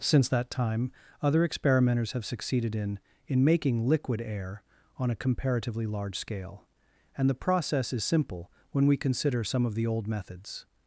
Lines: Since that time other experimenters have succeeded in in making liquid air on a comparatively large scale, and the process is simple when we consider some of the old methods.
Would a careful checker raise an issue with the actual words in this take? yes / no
no